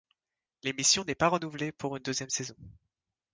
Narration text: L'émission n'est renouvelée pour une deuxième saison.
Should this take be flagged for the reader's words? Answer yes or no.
yes